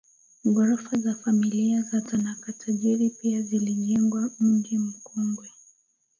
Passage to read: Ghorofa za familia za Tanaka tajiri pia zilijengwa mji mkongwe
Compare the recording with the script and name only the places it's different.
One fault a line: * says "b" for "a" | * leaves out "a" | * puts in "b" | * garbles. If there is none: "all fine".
all fine